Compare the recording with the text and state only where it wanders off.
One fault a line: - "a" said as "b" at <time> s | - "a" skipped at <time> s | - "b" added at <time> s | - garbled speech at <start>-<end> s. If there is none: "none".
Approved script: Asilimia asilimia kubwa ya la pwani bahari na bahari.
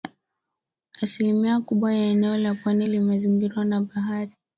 - "asilimia" skipped at 1.6 s
- "eneo" added at 2.0 s
- "bahari" said as "limezingirwa" at 2.9 s